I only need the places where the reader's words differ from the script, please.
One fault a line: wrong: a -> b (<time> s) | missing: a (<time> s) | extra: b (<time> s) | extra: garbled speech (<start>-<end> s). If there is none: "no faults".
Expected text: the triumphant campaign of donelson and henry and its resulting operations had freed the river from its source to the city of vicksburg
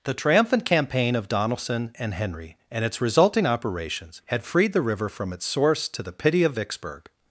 wrong: city -> pity (6.1 s)